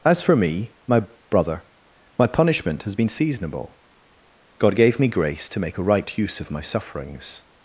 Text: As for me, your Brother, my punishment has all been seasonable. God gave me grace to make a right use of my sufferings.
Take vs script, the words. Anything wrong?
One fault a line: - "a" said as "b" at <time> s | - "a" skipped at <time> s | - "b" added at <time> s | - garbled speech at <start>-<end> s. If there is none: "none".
- "your" said as "my" at 0.9 s
- "all" skipped at 3.0 s